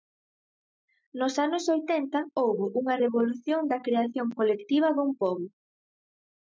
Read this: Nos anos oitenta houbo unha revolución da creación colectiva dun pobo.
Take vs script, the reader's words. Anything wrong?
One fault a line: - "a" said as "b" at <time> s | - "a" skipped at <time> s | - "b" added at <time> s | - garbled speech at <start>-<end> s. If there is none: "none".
none